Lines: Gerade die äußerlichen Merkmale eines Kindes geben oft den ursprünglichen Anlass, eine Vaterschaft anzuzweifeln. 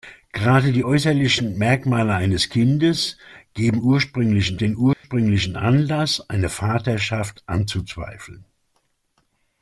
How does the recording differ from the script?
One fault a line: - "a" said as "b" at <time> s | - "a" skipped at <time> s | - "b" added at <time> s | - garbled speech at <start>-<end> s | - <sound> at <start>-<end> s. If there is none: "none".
- "oft" said as "ursprünglichen" at 3.8 s
- dropout at 4.9-5.0 s